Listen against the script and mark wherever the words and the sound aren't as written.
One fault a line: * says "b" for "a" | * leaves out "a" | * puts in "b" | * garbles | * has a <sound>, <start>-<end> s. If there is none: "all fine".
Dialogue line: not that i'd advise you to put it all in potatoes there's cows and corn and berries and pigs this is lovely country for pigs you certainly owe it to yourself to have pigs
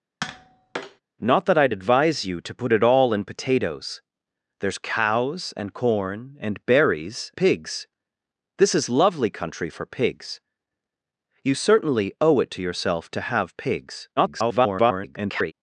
* has a tap, 0.2-1.0 s
* leaves out "and"
* garbles